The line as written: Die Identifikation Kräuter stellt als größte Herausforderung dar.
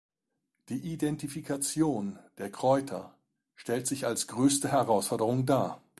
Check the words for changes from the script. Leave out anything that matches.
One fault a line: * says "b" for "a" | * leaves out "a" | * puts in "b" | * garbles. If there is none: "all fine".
* puts in "der"
* puts in "sich"